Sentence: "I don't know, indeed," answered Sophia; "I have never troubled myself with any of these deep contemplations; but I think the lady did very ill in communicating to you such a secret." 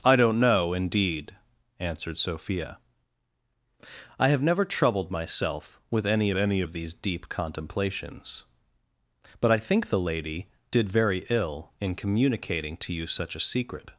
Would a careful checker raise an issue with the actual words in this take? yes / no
yes